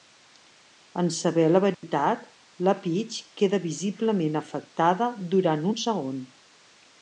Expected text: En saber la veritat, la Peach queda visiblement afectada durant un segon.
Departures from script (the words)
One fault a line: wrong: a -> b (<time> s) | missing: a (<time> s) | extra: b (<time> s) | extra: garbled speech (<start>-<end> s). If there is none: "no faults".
no faults